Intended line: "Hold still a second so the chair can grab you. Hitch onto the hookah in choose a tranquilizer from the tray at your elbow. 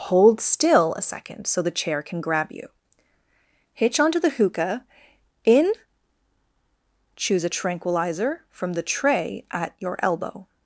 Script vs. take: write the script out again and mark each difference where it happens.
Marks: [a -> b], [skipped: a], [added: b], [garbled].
"Hold still a second so the chair can grab you. Hitch onto the hookah in choose a tranquilizer from the tray at your elbow.